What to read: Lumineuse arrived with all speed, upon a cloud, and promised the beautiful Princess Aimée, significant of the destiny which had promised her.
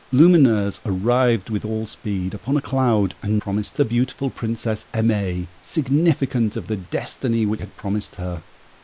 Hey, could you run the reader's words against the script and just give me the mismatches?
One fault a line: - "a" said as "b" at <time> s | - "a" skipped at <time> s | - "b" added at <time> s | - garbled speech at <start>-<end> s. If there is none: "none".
none